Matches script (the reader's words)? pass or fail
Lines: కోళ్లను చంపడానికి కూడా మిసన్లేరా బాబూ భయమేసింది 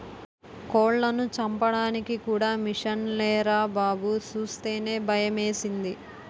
fail